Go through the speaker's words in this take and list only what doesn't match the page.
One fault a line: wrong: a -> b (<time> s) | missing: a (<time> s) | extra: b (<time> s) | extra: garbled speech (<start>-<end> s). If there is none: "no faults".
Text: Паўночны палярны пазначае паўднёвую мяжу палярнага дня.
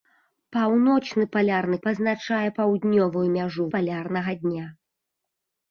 no faults